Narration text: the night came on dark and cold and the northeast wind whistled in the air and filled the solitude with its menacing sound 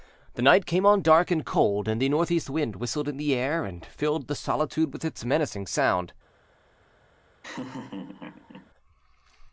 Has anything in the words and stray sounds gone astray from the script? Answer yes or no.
yes